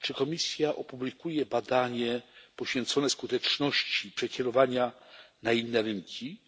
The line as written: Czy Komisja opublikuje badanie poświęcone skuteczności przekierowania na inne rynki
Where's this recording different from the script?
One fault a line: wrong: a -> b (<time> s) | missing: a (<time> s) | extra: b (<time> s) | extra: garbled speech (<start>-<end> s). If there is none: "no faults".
no faults